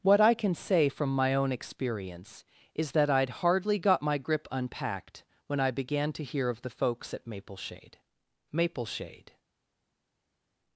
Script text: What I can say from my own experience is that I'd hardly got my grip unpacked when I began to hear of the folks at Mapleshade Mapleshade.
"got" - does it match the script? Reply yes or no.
yes